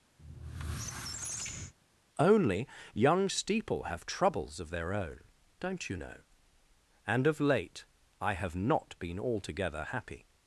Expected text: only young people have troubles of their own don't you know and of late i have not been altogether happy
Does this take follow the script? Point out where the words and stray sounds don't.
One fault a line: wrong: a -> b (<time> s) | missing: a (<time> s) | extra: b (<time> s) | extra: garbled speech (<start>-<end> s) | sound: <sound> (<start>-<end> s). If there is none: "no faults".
sound: squeak (0.2-1.7 s)
wrong: people -> steeple (3.3 s)